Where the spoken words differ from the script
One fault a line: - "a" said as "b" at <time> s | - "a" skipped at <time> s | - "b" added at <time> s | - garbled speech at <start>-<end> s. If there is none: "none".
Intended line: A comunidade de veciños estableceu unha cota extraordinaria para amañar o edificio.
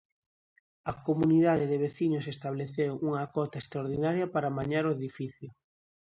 none